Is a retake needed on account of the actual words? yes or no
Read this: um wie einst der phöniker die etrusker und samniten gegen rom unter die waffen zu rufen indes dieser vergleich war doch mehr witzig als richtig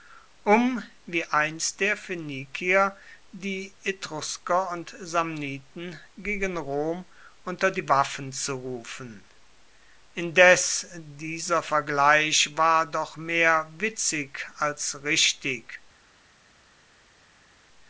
no